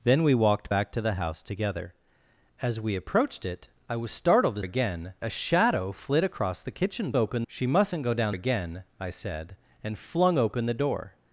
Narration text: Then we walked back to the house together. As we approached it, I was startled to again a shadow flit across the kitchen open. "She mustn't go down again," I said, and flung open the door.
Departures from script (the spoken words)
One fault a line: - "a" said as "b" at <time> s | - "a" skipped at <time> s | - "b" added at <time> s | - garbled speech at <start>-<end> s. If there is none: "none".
none